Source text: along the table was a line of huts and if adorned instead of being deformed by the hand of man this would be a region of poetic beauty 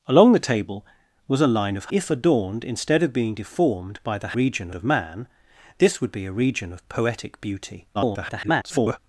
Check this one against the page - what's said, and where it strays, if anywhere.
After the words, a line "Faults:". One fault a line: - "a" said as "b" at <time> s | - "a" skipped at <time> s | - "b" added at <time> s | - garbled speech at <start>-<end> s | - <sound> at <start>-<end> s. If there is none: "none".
along the table was a line of if adorned instead of being deformed by the region of man this would be a region of poetic beauty [garbled]
Faults:
- "huts and" skipped at 1.9 s
- "hand" said as "region" at 4.3 s
- garbled speech at 7.9-9.0 s